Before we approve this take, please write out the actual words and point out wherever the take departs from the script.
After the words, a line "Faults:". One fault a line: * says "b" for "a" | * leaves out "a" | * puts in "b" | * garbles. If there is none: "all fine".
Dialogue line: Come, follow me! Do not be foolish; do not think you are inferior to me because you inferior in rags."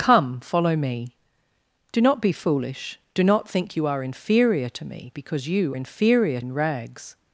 Come, follow me! Do not be foolish; do not think you are inferior to me because you inferior in rags."
Faults:
all fine